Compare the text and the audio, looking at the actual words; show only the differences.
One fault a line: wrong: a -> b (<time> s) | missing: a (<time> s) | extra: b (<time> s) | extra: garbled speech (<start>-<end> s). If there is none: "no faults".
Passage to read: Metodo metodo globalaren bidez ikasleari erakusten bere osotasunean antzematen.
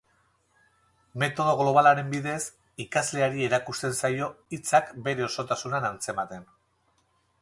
missing: metodo (1.5 s)
extra: zaio hitzak (4.0 s)